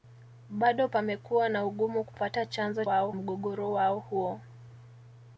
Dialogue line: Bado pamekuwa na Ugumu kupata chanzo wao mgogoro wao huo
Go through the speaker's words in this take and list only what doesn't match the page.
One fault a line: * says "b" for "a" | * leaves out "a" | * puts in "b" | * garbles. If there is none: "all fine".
all fine